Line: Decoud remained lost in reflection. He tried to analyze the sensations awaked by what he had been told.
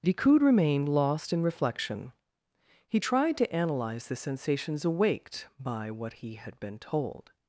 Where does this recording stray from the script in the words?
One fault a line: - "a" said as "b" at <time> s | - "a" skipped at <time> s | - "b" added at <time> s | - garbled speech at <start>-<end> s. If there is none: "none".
none